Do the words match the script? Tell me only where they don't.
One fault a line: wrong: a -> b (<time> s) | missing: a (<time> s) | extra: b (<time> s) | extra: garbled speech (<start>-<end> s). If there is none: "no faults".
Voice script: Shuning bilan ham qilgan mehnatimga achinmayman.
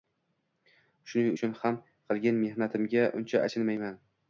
wrong: bilan -> uchun (1.4 s)
extra: uncha (3.2 s)